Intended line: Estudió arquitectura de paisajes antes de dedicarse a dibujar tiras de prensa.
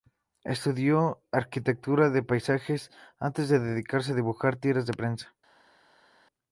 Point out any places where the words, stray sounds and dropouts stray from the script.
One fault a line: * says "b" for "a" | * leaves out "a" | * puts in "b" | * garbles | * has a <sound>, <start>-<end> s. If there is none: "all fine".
all fine